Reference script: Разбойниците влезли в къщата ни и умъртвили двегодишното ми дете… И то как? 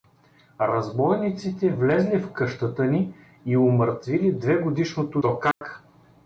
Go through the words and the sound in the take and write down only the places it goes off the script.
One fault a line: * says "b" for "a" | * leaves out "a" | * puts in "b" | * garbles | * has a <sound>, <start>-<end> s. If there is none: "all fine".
* leaves out "ми дете И"
* has a dropout, 5.5-5.6 s